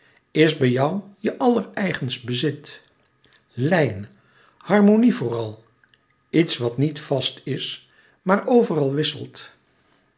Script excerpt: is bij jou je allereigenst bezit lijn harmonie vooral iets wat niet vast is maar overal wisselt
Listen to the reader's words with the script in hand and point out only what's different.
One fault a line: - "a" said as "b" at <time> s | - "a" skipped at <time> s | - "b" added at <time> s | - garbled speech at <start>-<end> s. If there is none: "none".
none